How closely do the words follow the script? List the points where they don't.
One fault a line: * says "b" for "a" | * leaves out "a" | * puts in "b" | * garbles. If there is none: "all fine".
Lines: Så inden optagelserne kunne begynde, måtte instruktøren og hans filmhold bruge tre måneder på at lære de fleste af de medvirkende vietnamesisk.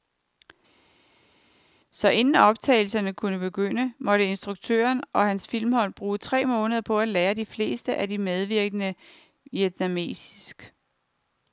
all fine